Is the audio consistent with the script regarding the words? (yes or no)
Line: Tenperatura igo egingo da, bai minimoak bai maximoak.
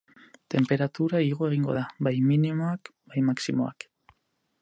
yes